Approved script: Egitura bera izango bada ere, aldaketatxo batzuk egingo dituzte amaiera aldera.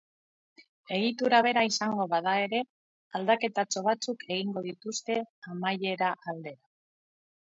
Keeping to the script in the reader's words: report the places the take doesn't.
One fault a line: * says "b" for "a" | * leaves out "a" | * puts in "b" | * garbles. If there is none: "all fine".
all fine